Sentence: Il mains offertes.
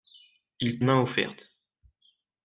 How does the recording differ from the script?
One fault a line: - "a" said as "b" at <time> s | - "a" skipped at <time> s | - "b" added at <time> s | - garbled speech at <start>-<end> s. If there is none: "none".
none